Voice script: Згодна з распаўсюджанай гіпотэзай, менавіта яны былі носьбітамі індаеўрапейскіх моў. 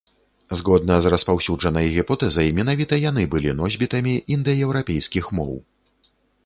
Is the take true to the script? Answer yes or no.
yes